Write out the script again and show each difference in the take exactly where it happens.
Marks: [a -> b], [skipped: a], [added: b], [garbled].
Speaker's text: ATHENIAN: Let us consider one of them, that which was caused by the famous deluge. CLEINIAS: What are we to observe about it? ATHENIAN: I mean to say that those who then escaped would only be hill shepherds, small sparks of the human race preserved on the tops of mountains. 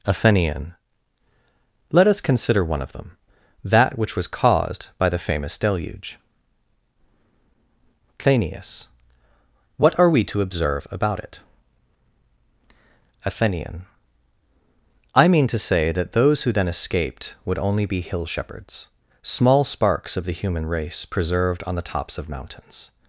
ATHENIAN: Let us consider one of them, that which was caused by the famous deluge. CLEINIAS: What are we to observe about it? ATHENIAN: I mean to say that those who then escaped would only be hill shepherds, small sparks of the human race preserved on the tops of mountains.